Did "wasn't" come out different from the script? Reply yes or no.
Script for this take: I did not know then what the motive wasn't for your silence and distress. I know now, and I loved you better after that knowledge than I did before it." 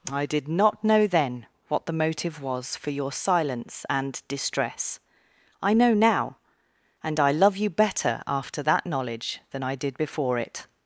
yes